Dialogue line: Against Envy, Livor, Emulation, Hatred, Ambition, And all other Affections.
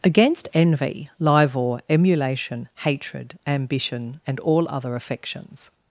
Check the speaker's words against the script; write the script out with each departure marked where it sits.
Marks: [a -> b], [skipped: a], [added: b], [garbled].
Against Envy, Livor, Emulation, Hatred, Ambition, And all other Affections.